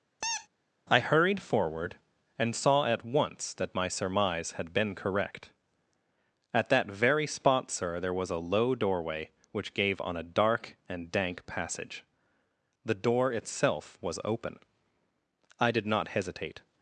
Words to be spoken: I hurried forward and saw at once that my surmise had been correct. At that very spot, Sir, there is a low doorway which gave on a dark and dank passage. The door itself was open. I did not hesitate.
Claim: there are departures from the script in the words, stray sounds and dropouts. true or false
true